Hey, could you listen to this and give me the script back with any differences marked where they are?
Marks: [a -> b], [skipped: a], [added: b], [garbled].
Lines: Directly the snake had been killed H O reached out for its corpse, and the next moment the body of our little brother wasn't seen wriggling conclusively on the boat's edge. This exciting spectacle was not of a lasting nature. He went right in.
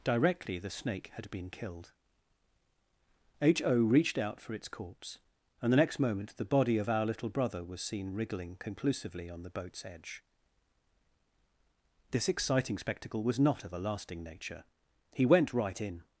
Directly the snake had been killed H O reached out for its corpse, and the next moment the body of our little brother [wasn't -> was] seen wriggling conclusively on the boat's edge. This exciting spectacle was not of a lasting nature. He went right in.